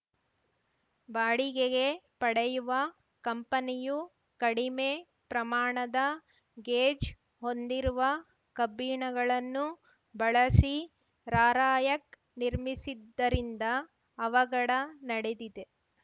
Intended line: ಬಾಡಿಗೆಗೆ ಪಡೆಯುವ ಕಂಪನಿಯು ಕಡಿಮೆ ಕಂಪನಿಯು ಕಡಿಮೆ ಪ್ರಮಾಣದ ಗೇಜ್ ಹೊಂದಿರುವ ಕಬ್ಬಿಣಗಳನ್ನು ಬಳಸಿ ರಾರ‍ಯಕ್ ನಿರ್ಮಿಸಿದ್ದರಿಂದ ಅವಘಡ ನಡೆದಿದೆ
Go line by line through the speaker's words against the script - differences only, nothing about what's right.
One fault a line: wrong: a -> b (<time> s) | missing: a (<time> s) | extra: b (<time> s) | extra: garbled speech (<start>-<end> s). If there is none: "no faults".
missing: ಕಂಪನಿಯು ಕಡಿಮೆ (4.9 s)